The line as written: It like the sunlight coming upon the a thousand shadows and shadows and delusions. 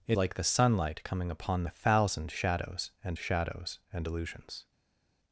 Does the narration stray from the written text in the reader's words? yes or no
no